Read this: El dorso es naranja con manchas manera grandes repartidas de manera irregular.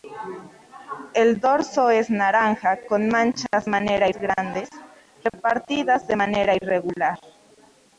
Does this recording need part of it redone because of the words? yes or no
no